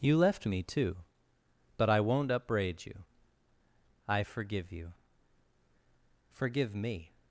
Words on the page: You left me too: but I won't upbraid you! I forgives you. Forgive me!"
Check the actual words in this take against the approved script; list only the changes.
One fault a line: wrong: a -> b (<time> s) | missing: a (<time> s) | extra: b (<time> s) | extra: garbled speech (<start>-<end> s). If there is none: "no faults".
wrong: forgives -> forgive (4.2 s)